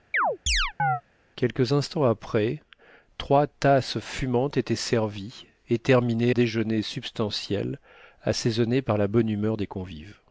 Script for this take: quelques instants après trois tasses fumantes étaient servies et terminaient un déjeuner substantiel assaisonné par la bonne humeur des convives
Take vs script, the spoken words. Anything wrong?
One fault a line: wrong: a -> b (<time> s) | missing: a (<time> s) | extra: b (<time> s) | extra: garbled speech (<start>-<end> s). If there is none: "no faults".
missing: un (6.3 s)